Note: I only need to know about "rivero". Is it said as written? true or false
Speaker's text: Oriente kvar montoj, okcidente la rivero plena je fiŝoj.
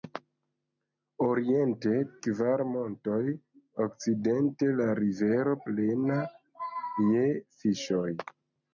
true